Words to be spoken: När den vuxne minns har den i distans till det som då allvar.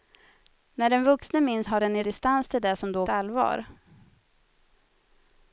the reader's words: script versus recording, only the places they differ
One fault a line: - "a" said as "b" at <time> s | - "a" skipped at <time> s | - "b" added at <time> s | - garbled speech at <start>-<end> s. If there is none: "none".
none